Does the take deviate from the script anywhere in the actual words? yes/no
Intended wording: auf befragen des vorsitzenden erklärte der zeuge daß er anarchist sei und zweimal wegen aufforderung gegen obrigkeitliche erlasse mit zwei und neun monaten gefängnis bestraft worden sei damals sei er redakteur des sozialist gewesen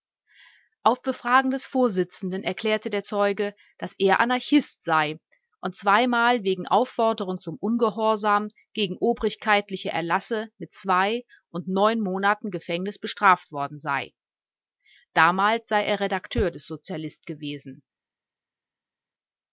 yes